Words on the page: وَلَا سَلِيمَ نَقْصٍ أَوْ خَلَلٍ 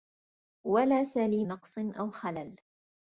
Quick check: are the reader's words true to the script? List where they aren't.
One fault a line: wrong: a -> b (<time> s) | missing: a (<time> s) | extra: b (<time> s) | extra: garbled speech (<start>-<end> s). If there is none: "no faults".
no faults